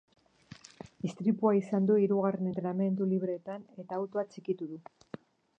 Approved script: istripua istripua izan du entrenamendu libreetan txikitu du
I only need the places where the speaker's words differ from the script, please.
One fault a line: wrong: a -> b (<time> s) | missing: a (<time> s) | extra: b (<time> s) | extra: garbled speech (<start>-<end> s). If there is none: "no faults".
missing: istripua (1.5 s)
extra: hirugarren (2.0 s)
extra: eta autoa (3.9 s)